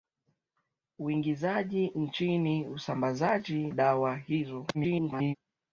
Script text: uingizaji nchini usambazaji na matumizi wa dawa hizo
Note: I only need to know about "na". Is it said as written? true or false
false